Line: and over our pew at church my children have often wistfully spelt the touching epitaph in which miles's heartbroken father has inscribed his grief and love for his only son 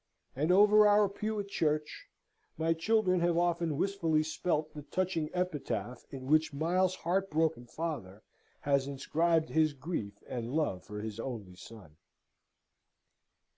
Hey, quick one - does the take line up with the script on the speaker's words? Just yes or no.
yes